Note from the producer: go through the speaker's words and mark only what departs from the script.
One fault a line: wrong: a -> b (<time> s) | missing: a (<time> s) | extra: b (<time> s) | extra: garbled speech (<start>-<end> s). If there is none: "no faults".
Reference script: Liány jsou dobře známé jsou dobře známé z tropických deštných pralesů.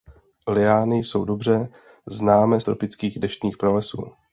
missing: jsou dobře známé (2.6 s)